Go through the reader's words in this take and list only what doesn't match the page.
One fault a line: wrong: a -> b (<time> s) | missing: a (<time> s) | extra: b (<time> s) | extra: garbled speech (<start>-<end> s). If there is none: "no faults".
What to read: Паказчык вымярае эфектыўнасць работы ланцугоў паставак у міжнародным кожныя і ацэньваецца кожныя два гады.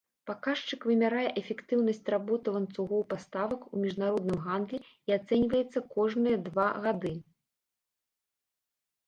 wrong: кожныя -> гандлі (4.5 s)